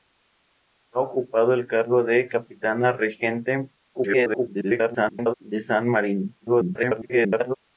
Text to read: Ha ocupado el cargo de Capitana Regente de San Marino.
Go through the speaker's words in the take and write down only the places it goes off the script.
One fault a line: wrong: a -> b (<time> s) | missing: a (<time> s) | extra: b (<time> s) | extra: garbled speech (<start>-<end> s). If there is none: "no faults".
extra: garbled speech (3.9-5.3 s)
extra: garbled speech (6.4-7.5 s)